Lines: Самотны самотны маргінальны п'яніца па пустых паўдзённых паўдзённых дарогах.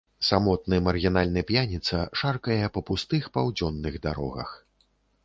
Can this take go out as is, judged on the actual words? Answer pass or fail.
fail